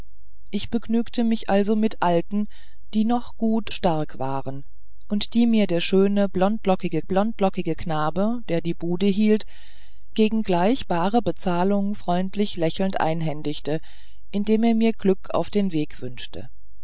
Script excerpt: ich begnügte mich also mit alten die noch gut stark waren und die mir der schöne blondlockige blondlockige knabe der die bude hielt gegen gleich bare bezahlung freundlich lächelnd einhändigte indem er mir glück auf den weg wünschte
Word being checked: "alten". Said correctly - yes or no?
yes